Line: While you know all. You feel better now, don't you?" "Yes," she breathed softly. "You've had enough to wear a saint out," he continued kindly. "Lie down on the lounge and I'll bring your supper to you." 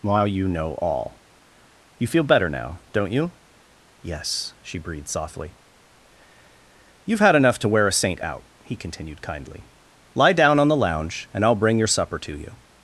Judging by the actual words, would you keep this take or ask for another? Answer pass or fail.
pass